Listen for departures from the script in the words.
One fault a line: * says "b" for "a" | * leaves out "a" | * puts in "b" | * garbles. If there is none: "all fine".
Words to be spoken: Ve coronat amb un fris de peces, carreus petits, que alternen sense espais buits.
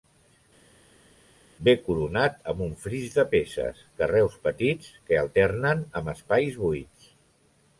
* says "amb" for "sense"